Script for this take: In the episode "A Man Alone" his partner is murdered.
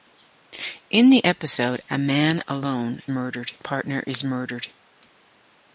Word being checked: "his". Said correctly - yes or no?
no